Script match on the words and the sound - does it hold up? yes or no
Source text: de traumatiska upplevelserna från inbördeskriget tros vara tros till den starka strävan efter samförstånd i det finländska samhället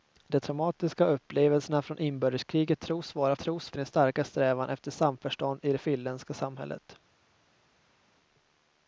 yes